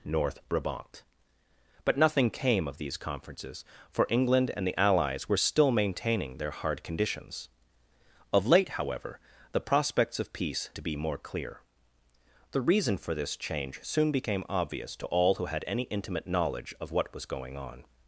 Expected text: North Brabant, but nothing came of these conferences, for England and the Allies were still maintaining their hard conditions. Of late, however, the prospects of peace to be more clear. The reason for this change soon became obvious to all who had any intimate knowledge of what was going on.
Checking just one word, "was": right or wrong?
right